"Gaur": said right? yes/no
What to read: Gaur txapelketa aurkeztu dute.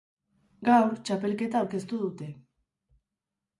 yes